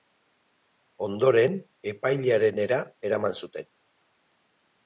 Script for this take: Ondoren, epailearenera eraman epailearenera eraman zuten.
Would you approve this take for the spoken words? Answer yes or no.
no